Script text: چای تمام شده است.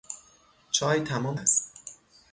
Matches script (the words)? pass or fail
fail